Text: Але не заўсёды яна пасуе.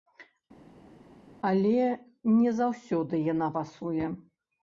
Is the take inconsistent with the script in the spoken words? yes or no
no